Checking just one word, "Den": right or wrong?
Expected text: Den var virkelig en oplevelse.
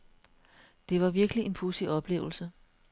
wrong